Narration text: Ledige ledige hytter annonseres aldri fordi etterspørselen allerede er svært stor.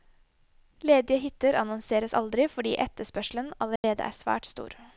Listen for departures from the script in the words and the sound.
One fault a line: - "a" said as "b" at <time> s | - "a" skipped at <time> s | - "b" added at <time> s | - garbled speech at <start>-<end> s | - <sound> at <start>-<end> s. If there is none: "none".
- "ledige" skipped at 1.2 s
- dropout at 3.8-3.8 s